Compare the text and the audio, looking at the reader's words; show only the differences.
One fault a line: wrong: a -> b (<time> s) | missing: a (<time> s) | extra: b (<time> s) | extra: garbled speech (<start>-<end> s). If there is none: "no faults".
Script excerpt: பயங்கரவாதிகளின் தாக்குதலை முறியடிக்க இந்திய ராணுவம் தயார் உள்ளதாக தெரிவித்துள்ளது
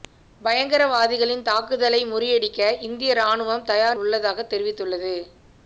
no faults